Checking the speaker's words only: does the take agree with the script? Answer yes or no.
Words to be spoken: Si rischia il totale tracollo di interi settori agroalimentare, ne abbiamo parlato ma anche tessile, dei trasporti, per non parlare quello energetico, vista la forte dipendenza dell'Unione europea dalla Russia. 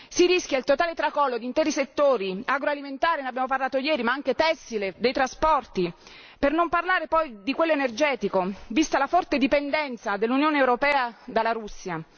no